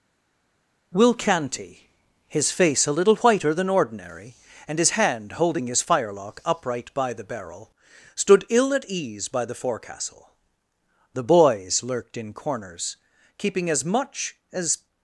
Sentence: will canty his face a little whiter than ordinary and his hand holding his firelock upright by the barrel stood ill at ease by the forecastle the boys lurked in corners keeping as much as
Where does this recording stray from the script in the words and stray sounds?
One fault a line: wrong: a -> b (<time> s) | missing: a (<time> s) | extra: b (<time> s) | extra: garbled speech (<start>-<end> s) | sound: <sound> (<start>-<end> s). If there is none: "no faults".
no faults